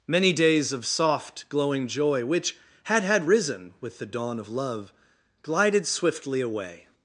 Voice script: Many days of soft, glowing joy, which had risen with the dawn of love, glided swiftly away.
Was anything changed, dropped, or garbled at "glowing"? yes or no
no